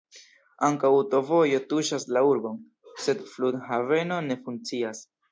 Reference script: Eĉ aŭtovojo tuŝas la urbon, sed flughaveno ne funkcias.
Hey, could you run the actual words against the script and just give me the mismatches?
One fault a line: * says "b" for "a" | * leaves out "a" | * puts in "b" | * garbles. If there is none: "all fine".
* says "Ankaŭ" for "Eĉ"